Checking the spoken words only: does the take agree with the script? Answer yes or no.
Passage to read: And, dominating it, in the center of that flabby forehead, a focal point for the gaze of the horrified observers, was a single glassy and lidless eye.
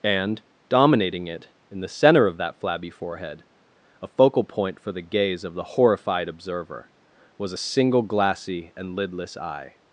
no